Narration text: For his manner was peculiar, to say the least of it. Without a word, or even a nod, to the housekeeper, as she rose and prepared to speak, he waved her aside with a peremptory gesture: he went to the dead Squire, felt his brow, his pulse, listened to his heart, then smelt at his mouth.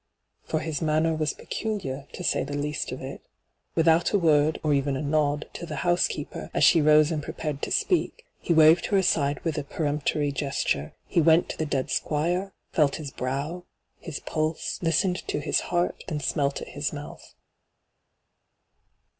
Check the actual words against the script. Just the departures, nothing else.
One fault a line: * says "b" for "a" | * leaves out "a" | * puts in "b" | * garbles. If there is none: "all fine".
all fine